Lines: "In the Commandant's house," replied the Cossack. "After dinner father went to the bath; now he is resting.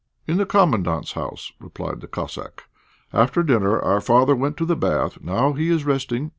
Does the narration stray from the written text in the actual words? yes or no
yes